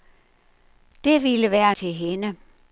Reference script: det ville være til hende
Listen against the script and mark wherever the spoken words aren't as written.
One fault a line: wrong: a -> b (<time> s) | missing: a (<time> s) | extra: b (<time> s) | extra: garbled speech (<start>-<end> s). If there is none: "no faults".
no faults